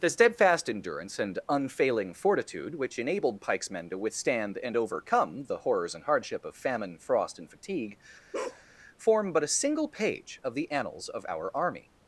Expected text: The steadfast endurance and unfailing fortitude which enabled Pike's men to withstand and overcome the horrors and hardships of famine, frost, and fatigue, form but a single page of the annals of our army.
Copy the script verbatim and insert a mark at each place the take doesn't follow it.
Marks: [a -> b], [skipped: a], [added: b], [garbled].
The steadfast endurance and unfailing fortitude which enabled Pike's men to withstand and overcome the horrors and [hardships -> hardship] of famine, frost, and fatigue, form but a single page of the annals of our army.